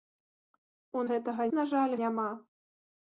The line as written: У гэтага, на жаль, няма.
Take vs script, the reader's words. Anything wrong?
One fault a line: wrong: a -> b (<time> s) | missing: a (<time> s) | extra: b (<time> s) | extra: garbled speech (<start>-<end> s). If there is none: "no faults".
no faults